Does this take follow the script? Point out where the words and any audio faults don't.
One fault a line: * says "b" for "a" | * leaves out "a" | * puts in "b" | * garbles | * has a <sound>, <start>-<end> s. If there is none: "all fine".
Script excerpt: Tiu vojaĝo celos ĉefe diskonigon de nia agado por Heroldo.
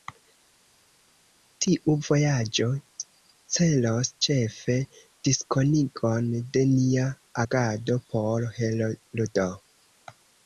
all fine